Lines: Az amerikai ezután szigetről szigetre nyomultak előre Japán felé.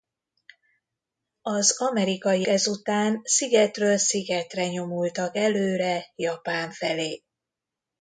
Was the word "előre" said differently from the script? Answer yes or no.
no